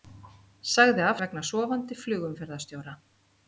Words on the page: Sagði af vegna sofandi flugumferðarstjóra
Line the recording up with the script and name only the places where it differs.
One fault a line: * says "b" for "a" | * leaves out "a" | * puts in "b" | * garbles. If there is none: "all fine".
all fine